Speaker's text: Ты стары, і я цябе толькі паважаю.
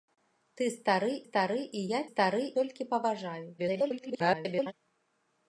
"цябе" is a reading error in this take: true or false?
true